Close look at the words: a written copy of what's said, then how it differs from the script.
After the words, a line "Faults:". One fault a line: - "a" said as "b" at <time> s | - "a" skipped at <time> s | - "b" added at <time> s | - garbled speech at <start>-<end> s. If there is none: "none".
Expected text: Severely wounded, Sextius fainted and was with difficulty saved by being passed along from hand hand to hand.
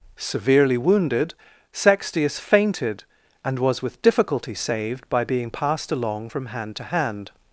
Severely wounded, Sextius fainted and was with difficulty saved by being passed along from hand to hand.
Faults:
- "hand" skipped at 6.8 s